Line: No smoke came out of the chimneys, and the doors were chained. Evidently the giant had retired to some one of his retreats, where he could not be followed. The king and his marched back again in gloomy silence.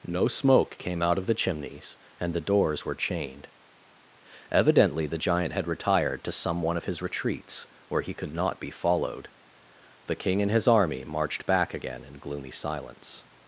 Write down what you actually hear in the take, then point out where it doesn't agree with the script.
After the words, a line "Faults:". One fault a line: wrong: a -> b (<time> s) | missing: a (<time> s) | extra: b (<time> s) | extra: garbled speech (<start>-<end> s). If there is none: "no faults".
No smoke came out of the chimneys, and the doors were chained. Evidently the giant had retired to some one of his retreats, where he could not be followed. The king and his army marched back again in gloomy silence.
Faults:
extra: army (10.7 s)